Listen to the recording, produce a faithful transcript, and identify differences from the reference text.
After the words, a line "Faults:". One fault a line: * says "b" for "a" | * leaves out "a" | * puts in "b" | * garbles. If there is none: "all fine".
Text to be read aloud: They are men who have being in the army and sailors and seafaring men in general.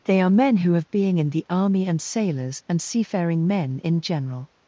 They are men who have being in the army and sailors and seafaring men in general.
Faults:
all fine